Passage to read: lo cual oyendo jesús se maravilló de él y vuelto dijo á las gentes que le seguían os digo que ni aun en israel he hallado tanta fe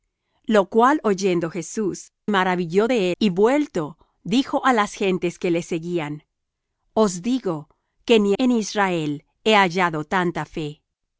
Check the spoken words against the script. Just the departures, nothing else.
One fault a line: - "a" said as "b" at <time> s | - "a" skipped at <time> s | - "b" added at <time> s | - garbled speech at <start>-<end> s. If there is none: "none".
- "se" skipped at 2.1 s
- "él" skipped at 3.1 s
- "aun" skipped at 8.3 s